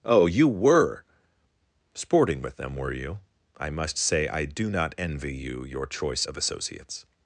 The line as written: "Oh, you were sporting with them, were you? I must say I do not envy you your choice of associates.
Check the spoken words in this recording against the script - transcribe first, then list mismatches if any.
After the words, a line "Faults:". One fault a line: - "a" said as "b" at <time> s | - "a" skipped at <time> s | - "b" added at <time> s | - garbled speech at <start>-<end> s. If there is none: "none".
"Oh, you were sporting with them, were you? I must say I do not envy you your choice of associates.
Faults:
none